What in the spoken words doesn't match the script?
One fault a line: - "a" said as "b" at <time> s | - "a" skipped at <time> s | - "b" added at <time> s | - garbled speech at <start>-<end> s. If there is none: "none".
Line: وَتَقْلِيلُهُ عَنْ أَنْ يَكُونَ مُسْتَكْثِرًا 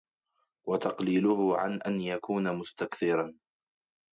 none